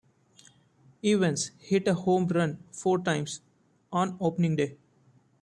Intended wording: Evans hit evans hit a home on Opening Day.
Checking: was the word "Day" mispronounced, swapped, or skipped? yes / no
no